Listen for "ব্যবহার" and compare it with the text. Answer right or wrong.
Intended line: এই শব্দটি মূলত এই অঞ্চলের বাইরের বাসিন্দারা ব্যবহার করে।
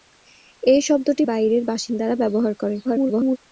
right